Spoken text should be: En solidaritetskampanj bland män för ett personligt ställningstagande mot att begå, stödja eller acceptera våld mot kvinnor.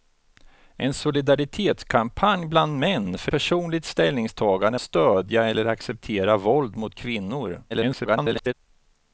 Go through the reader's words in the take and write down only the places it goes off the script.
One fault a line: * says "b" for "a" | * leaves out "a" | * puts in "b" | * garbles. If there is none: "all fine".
* leaves out "ett"
* leaves out "mot att begå"
* garbles